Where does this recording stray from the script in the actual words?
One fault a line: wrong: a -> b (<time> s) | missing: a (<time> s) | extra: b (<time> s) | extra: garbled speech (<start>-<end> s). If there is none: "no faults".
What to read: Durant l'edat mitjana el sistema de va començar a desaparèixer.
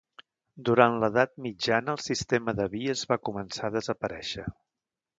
extra: vies (2.8 s)